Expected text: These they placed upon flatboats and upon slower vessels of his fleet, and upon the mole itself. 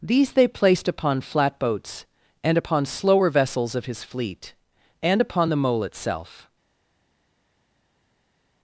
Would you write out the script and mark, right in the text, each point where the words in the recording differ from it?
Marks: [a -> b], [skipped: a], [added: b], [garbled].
These they placed upon flatboats and upon slower vessels of his fleet, and upon the mole itself.